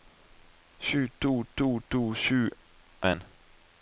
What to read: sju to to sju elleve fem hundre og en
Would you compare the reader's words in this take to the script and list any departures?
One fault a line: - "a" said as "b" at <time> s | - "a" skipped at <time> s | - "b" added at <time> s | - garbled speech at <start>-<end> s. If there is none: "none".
- "to" added at 1.9 s
- "elleve fem hundre" skipped at 2.4 s